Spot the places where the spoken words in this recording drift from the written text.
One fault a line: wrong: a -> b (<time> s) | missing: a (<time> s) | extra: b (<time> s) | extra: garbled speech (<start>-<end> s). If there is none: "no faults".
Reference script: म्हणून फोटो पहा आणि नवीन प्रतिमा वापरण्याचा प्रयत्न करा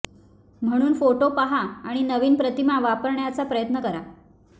no faults